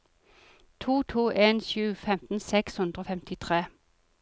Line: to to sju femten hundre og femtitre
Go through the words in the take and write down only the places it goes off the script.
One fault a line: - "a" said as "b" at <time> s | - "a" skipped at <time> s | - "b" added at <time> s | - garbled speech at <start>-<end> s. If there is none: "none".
- "en" added at 1.3 s
- "seks" added at 2.5 s